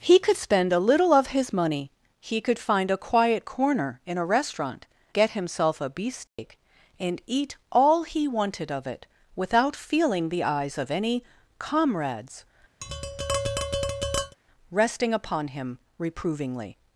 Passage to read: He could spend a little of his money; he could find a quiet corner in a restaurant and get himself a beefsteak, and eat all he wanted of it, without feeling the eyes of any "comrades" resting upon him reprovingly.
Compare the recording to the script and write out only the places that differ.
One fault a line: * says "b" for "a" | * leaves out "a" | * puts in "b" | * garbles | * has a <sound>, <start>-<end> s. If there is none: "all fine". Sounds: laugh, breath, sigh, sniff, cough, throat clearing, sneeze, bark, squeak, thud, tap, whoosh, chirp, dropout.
* leaves out "and"
* has a dropout, 6.3-6.4 s
* has a tap, 12.8-14.4 s